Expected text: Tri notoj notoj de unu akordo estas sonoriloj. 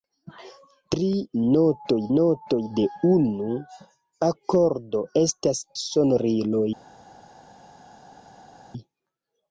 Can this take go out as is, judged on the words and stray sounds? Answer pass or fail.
pass